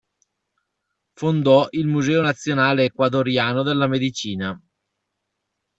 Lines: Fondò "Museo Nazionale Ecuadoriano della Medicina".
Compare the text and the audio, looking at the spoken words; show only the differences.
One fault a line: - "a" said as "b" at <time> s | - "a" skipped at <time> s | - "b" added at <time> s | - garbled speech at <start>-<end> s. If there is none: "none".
- "il" added at 1.7 s